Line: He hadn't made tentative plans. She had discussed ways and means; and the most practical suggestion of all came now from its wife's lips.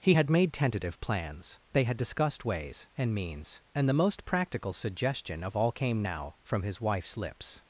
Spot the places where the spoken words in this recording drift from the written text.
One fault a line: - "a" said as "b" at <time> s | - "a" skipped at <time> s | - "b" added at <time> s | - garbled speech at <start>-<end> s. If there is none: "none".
- "hadn't" said as "had" at 0.1 s
- "She" said as "They" at 1.7 s
- "its" said as "his" at 6.6 s